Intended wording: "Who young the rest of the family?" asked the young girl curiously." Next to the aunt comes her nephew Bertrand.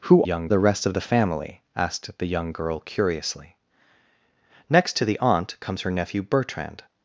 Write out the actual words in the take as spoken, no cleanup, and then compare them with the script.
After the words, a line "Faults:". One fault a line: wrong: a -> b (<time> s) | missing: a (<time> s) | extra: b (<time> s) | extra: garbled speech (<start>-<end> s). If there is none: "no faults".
"Who young the rest of the family?" asked the young girl curiously." Next to the aunt comes her nephew Bertrand.
Faults:
no faults